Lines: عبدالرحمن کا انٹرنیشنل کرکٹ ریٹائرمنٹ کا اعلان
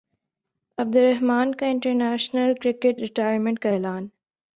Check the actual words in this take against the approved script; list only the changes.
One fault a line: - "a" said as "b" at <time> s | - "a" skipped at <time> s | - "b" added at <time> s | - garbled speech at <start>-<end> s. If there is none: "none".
none